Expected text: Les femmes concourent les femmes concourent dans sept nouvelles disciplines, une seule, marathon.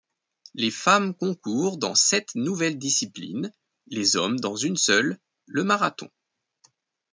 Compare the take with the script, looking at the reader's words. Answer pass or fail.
fail